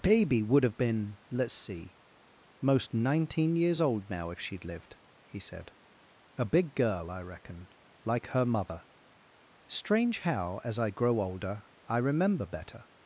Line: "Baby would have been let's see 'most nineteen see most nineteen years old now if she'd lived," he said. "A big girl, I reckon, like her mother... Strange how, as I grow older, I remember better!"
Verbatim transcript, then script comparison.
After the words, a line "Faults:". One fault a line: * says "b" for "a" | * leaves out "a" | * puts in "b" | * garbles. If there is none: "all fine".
"Baby would have been let's see 'most nineteen years old now if she'd lived," he said. "A big girl, I reckon, like her mother... Strange how, as I grow older, I remember better!"
Faults:
* leaves out "see most nineteen"